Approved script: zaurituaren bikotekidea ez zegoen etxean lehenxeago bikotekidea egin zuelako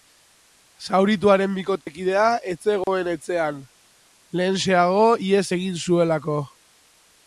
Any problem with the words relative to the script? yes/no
yes